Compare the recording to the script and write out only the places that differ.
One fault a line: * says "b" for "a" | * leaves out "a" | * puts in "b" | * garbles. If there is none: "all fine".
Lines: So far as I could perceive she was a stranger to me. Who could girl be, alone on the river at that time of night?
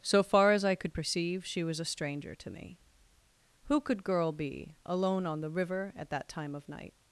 all fine